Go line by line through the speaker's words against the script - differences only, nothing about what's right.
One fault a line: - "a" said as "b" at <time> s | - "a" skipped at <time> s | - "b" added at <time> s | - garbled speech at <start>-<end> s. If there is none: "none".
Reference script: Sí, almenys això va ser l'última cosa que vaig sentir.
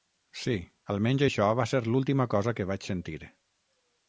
none